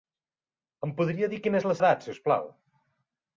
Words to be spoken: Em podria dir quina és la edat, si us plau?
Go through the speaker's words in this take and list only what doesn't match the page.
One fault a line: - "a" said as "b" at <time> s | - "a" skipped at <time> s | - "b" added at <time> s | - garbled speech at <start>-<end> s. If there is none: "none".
none